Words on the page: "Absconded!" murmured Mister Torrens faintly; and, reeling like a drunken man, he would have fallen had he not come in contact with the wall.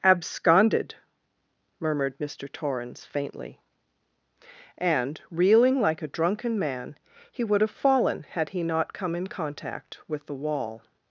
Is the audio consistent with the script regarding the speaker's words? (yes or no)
yes